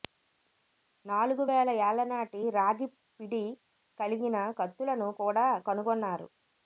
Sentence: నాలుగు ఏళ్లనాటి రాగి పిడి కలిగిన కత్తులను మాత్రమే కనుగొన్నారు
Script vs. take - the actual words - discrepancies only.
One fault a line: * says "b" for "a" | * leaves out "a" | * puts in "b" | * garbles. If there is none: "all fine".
* puts in "వేల"
* says "కూడా" for "మాత్రమే"